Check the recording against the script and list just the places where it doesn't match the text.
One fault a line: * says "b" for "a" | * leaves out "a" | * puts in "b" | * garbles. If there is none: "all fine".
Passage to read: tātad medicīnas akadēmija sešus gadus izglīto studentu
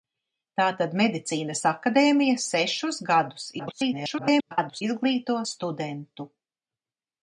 * garbles